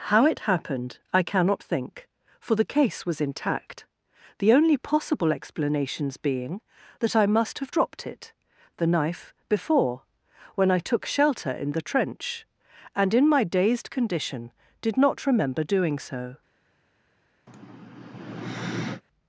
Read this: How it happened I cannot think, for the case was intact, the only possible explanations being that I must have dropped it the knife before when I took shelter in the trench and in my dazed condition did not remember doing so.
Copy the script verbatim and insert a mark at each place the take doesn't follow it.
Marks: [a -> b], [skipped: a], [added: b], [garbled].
How it happened I cannot think, for the case was intact, the only possible explanations being that I must have dropped it the knife before when I took shelter in the trench and in my dazed condition did not remember doing so.